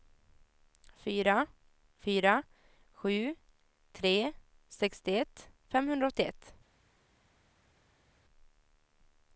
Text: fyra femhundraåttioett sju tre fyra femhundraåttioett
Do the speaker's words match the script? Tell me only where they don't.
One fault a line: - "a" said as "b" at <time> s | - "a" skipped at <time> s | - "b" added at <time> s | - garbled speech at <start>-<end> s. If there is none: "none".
- "femhundraåttioett" said as "fyra" at 2.0 s
- "fyra" said as "sextioett" at 4.7 s